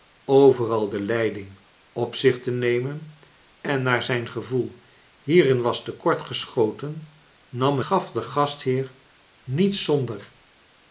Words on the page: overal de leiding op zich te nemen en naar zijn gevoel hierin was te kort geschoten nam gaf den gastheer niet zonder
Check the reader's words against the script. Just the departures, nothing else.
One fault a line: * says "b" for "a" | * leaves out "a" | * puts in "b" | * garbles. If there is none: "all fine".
all fine